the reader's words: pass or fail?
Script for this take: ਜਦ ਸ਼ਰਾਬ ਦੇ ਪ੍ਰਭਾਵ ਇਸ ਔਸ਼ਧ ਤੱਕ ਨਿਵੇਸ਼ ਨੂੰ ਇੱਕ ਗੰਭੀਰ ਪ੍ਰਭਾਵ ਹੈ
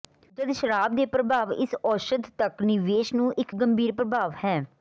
pass